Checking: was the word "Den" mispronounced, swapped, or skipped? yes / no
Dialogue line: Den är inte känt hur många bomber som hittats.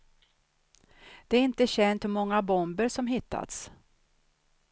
yes